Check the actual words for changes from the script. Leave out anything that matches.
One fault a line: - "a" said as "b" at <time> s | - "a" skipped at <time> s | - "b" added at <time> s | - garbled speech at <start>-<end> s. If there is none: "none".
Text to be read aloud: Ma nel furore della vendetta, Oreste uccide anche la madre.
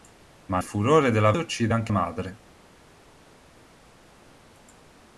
- "nel" skipped at 0.6 s
- "vendetta Oreste" skipped at 1.3 s
- "la" skipped at 1.9 s